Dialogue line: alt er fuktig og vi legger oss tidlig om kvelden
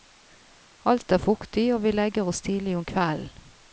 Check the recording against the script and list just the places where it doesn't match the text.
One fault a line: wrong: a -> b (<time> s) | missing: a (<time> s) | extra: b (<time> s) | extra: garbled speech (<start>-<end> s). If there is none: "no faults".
no faults